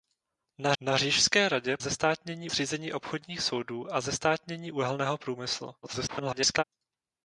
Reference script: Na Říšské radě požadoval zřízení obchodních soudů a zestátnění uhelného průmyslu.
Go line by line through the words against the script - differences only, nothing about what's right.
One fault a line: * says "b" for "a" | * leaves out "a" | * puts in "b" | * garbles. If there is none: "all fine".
* puts in "na"
* says "zestátnění" for "požadoval"
* garbles